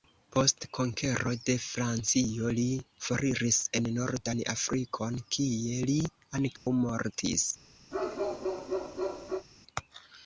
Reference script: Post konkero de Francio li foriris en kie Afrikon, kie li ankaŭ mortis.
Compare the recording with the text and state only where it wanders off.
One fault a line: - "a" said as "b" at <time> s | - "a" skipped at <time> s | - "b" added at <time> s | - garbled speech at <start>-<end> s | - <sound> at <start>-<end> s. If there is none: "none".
- "kie" said as "nordan" at 4.0 s
- dropout at 6.6-6.7 s
- bark at 7.9-9.5 s